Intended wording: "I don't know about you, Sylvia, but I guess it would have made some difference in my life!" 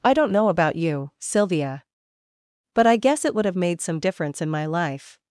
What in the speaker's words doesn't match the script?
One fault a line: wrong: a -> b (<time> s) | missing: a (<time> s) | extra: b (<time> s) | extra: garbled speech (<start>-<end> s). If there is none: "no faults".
no faults